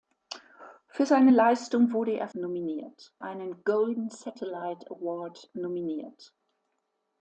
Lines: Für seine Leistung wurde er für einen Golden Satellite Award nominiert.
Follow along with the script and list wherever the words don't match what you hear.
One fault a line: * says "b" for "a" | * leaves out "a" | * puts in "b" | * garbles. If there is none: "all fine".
* says "nominiert" for "für"